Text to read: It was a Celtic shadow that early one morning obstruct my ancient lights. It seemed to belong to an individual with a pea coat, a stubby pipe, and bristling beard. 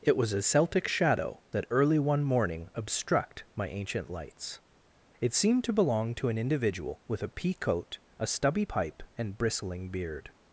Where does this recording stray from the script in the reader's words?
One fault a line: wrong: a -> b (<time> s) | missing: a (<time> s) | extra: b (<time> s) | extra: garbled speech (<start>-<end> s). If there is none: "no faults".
no faults